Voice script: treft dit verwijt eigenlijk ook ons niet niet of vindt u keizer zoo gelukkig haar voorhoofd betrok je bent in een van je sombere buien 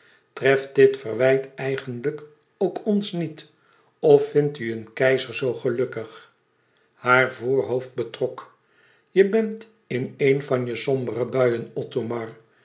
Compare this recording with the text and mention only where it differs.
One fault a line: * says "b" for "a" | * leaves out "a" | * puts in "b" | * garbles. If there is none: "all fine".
* leaves out "niet"
* puts in "een"